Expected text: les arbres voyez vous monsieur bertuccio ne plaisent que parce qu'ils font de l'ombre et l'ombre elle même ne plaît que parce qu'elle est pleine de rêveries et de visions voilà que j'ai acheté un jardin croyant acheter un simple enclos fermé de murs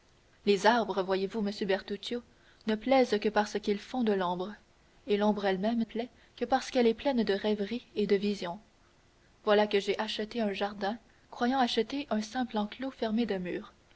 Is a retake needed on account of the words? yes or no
yes